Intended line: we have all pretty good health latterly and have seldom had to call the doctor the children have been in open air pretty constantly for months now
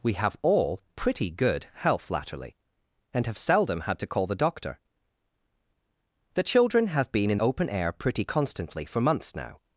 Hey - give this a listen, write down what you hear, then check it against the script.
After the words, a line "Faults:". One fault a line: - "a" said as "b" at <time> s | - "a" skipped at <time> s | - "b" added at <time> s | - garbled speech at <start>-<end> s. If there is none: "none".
we have all pretty good health latterly and have seldom had to call the doctor the children have been in open air pretty constantly for months now
Faults:
none